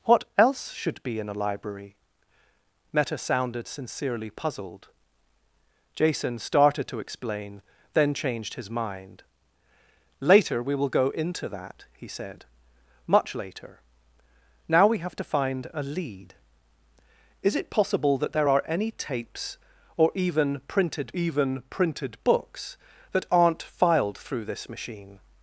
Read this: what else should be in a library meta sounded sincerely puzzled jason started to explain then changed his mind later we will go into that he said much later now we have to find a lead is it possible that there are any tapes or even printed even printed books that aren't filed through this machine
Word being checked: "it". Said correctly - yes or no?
yes